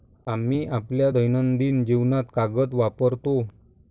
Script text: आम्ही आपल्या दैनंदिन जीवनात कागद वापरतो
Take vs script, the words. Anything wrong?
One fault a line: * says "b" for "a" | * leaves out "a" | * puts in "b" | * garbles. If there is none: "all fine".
all fine